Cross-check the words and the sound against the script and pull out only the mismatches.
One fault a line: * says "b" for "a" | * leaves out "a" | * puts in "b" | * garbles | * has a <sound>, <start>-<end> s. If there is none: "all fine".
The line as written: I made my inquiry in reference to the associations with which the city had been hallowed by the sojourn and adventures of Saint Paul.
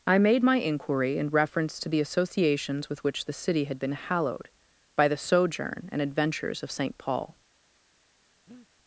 * has a breath, 8.5-8.7 s